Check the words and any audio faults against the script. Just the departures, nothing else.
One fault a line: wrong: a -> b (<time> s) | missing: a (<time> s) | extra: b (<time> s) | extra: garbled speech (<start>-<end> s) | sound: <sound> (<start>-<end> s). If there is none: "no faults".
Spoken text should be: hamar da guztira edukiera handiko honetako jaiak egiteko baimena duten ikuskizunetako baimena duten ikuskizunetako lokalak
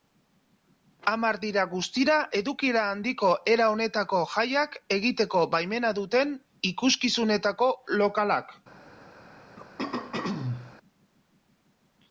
wrong: da -> dira (1.4 s)
extra: era (3.5 s)
missing: baimena duten ikuskizunetako (7.7 s)
sound: throat clearing (9.6-10.8 s)